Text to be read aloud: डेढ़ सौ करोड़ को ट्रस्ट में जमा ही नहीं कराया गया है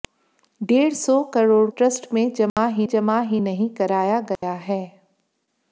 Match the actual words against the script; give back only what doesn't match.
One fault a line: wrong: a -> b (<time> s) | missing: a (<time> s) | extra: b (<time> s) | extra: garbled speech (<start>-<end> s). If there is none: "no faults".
missing: को (1.7 s)
extra: जमा ही (2.9 s)